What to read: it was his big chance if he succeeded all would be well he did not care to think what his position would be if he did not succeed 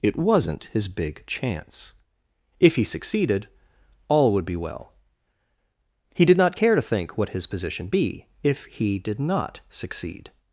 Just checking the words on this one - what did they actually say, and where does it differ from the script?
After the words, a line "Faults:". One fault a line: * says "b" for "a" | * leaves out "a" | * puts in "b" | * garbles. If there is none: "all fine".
it wasn't his big chance if he succeeded all would be well he did not care to think what his position be if he did not succeed
Faults:
* says "wasn't" for "was"
* leaves out "would"